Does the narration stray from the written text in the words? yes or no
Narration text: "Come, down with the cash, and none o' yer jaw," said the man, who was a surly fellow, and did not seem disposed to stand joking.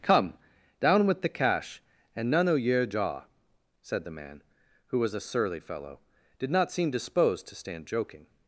yes